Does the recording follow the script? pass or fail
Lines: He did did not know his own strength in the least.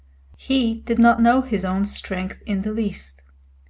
fail